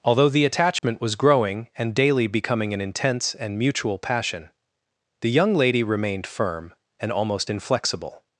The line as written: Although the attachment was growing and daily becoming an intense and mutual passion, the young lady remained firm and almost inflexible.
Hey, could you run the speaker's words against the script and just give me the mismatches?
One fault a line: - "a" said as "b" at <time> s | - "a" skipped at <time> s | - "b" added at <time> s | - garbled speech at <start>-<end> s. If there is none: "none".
none